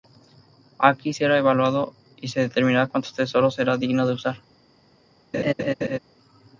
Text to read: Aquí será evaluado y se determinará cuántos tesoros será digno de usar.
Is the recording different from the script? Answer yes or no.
no